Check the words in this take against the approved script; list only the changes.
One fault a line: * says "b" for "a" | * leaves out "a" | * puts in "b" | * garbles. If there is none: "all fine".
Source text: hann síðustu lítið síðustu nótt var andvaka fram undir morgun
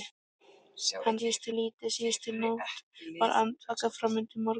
all fine